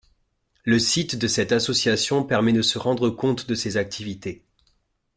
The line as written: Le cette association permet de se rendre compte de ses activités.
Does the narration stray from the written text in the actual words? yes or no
yes